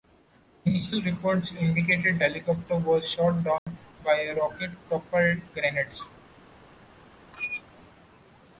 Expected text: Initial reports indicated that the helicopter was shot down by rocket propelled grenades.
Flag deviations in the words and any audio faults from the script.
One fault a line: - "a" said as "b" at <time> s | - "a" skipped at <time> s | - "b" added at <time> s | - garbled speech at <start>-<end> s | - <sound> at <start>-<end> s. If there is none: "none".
- "that the" skipped at 2.2 s
- dropout at 3.6-3.7 s
- squeak at 7.3-7.6 s